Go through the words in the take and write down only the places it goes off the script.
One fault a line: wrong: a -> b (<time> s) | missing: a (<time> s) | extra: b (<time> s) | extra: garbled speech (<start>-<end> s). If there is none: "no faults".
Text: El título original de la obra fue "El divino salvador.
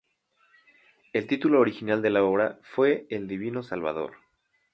no faults